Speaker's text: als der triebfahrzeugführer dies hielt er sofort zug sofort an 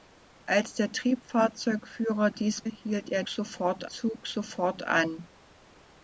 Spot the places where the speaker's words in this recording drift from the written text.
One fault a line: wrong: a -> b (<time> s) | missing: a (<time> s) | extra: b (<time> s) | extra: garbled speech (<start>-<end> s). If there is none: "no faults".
no faults